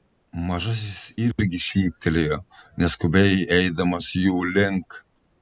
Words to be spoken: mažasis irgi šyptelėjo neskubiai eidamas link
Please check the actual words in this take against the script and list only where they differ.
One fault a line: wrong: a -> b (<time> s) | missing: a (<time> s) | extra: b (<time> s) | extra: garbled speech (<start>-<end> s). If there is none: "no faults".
extra: jų (4.2 s)